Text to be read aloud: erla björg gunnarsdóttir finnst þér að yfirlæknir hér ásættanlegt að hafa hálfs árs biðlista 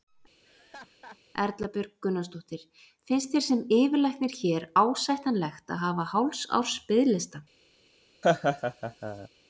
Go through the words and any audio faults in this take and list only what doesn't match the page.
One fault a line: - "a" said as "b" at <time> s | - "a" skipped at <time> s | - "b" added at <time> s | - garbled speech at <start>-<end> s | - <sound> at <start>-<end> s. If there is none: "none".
- laugh at 0.4-1.2 s
- "að" said as "sem" at 3.5 s
- laugh at 8.2-9.3 s